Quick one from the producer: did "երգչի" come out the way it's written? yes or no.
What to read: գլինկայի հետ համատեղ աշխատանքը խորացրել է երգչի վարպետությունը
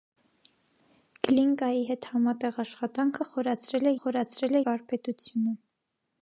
no